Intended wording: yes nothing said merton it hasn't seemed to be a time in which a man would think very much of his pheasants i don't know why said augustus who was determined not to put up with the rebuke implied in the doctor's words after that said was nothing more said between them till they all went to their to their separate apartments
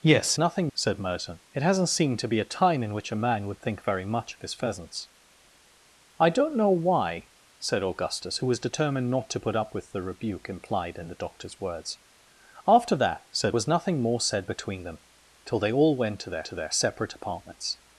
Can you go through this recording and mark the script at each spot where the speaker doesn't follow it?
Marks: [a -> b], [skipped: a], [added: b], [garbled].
yes nothing said merton it hasn't seemed to be a time in which a man would think very much of his pheasants i don't know why said augustus who was determined not to put up with the rebuke implied in the doctor's words after that said was nothing more said between them till they all went to their to their separate apartments